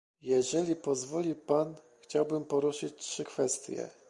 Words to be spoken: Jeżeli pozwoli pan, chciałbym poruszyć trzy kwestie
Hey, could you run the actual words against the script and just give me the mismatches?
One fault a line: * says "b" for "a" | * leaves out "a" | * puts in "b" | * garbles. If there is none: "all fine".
all fine